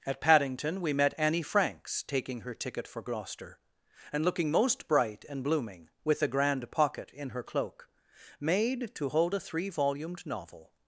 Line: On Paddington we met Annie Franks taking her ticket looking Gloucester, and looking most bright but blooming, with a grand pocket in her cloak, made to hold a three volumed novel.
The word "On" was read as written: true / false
false